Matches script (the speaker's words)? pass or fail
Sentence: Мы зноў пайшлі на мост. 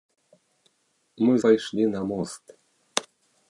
fail